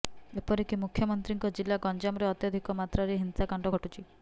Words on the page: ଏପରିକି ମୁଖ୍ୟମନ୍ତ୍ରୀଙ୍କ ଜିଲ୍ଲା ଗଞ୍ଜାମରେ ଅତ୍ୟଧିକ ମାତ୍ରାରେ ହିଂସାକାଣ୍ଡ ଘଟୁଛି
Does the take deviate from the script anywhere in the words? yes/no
no